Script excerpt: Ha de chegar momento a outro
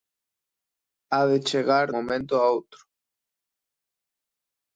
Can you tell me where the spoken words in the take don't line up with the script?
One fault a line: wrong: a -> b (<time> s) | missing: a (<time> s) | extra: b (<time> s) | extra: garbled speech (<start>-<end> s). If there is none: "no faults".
no faults